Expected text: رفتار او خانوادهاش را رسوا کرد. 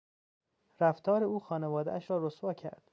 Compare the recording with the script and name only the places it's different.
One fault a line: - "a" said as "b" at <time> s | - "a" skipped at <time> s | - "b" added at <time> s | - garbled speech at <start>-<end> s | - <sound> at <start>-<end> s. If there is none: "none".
none